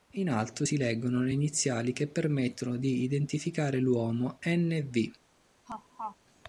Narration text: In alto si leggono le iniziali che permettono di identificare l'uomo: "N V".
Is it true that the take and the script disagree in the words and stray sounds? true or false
true